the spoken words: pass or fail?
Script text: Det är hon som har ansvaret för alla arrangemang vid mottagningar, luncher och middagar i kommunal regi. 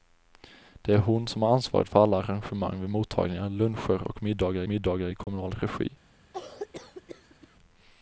fail